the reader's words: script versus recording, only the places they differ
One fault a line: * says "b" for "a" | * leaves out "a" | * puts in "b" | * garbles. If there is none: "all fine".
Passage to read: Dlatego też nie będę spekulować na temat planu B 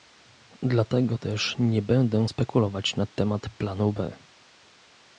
all fine